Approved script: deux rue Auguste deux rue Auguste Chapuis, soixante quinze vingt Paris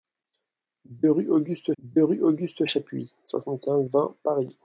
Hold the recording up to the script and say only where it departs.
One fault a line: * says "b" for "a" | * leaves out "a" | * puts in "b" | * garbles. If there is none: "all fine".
all fine